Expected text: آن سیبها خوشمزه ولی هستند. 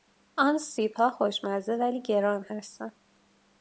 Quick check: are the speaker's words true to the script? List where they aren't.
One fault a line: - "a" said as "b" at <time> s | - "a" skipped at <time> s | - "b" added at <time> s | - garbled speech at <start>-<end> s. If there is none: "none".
- "گران" added at 2.0 s